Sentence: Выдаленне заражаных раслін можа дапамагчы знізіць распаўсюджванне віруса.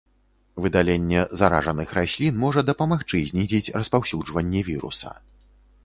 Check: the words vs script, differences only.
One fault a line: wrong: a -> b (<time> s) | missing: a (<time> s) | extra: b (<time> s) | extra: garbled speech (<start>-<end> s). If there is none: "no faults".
no faults